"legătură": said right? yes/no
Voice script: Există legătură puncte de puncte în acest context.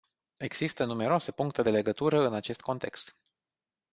no